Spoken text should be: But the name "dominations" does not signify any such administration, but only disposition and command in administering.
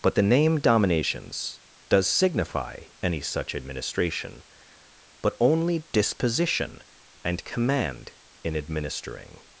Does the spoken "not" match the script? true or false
false